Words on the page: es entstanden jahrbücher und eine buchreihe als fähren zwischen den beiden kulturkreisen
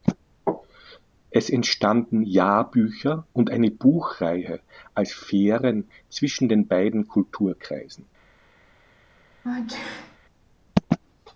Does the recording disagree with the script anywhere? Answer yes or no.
no